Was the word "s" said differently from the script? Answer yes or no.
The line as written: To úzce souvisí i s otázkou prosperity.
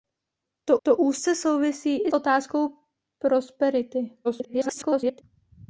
yes